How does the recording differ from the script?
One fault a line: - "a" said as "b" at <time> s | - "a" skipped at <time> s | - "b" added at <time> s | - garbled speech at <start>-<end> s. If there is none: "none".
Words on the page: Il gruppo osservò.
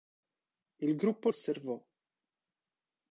none